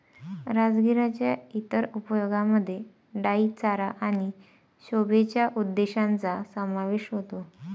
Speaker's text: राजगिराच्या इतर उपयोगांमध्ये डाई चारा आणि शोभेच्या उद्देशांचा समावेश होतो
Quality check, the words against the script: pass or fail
pass